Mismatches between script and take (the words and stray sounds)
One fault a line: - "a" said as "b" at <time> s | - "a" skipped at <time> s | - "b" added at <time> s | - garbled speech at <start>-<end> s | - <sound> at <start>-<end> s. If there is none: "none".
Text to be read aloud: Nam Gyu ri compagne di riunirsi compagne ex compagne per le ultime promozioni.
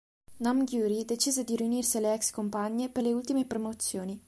- "compagne" said as "decise" at 1.1 s
- "compagne" said as "alle" at 2.0 s